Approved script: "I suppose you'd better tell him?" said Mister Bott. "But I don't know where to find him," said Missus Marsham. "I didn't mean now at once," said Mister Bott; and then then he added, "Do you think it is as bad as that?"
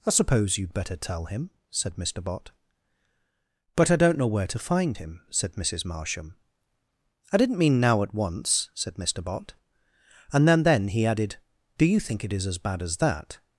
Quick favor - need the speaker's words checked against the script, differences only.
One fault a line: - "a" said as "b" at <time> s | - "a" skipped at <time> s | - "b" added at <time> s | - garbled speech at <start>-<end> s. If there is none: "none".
none